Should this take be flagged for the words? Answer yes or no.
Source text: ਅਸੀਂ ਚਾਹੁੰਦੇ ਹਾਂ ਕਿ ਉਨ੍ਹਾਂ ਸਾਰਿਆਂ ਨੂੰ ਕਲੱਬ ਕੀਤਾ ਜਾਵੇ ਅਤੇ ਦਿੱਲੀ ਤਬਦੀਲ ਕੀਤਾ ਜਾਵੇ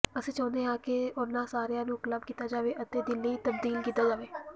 no